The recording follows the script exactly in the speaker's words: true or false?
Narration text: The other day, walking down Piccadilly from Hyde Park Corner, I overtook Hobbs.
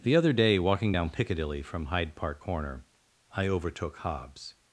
true